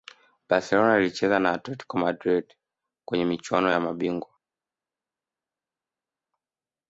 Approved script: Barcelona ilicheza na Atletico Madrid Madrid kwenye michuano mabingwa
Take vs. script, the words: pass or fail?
fail